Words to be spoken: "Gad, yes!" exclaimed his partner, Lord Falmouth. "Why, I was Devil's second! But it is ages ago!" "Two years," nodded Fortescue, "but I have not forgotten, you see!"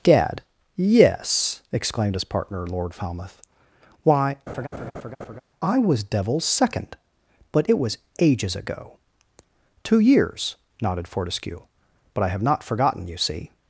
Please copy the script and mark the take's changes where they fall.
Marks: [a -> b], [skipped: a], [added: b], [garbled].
"Gad, yes!" exclaimed his partner, Lord Falmouth. "Why, I was Devil's second! But it [is -> was] ages ago!" "Two years," nodded Fortescue, "but I have not forgotten, you see!"